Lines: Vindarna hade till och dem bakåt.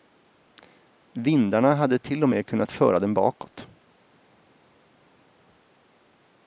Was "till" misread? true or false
false